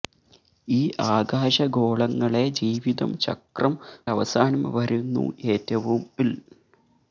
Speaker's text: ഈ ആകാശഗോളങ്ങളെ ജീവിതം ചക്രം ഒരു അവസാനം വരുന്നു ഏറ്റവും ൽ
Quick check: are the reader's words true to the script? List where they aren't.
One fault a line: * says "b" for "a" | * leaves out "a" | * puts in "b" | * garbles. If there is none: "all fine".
* leaves out "ഒരു"